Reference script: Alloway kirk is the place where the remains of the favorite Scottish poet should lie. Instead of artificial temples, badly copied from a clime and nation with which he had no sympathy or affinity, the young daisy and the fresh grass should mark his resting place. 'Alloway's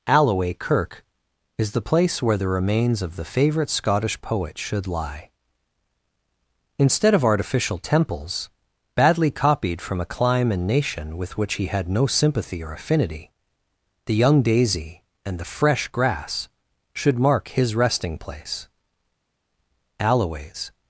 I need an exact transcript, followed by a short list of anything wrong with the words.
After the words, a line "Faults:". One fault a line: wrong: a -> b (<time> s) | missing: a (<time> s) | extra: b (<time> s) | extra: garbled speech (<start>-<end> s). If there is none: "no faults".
Alloway kirk is the place where the remains of the favorite Scottish poet should lie. Instead of artificial temples, badly copied from a clime and nation with which he had no sympathy or affinity, the young daisy and the fresh grass should mark his resting place. 'Alloway's
Faults:
no faults